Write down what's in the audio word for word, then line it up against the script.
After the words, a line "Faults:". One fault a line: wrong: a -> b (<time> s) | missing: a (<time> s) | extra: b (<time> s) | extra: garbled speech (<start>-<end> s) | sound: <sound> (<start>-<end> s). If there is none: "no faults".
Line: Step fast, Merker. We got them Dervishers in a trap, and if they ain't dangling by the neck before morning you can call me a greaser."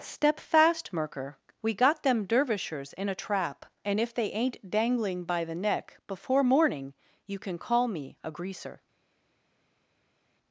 Step fast, Merker. We got them Dervishers in a trap, and if they ain't dangling by the neck before morning you can call me a greaser."
Faults:
no faults